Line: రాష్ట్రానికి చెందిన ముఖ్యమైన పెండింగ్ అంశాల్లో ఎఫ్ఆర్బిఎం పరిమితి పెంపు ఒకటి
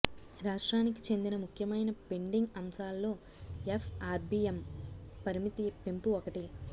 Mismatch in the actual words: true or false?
false